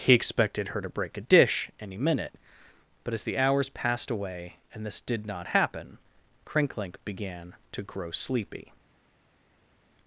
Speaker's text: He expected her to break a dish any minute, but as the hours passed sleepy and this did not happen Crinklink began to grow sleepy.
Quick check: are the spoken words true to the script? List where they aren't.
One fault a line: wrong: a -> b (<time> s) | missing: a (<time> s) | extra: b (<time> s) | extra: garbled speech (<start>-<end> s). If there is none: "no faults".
wrong: sleepy -> away (4.1 s)